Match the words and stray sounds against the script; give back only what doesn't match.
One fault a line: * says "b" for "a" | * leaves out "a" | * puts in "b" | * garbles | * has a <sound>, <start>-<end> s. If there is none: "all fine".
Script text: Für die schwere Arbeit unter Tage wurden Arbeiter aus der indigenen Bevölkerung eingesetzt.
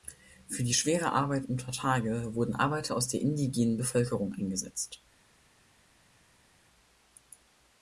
all fine